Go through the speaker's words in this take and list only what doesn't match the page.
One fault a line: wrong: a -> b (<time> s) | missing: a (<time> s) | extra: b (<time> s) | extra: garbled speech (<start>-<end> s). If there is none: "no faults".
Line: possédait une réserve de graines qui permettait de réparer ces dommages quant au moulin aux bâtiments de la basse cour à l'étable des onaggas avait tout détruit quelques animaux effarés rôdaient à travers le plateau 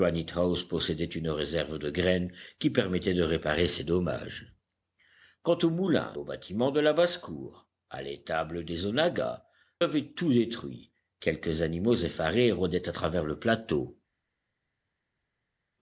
no faults